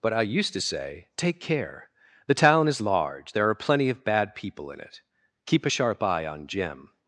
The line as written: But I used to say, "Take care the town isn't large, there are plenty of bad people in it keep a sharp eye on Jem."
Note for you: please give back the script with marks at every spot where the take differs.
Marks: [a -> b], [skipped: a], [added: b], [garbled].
But I used to say, "Take care the town [isn't -> is] large, there are plenty of bad people in it keep a sharp eye on Jem."